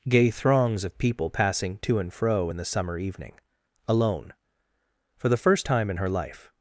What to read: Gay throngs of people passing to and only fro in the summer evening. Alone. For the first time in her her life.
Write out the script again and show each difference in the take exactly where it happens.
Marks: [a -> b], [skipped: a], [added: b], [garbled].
Gay throngs of people passing to and [skipped: only] fro in the summer evening. Alone. For the first time in her [skipped: her] life.